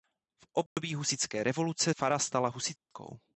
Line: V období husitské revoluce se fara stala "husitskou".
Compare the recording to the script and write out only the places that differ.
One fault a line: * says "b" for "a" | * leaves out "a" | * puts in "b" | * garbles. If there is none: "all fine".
* leaves out "se"